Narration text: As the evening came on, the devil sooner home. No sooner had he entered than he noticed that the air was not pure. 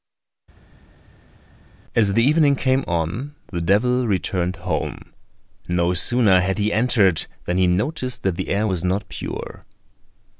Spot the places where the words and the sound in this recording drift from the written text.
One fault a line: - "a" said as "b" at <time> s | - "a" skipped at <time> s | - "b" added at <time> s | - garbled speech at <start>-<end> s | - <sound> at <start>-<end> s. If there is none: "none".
- "sooner" said as "returned" at 4.1 s